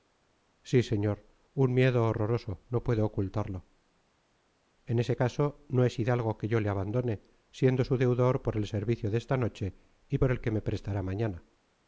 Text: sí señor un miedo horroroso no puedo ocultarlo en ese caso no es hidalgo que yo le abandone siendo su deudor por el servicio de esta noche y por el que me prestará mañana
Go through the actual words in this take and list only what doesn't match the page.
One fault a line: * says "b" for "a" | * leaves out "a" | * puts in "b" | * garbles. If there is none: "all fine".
all fine